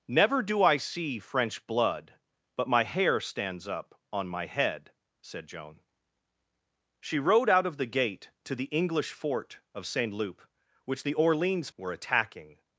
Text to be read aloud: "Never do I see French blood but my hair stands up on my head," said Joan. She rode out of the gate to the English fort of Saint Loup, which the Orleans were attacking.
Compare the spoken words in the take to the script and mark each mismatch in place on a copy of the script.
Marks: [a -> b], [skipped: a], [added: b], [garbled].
"Never do I see French blood but my hair stands up on my head," said Joan. She rode out of the gate to the English fort of Saint Loup, which the Orleans were attacking.